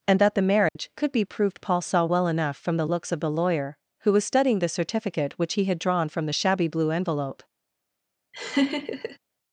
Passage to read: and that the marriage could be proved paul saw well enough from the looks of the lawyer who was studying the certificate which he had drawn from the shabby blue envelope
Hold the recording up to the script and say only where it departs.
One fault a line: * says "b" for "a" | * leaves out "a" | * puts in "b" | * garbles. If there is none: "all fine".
all fine